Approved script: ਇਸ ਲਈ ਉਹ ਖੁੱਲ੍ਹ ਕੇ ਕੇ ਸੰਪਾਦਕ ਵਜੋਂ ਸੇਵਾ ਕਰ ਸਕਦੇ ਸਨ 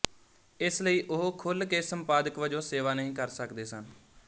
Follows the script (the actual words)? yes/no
no